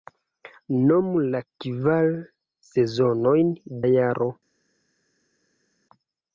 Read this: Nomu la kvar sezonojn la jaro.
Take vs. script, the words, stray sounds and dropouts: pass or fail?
pass